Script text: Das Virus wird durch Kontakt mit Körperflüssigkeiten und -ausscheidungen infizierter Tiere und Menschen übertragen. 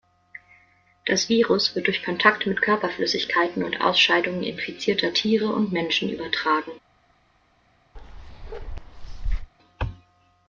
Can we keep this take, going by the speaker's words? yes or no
yes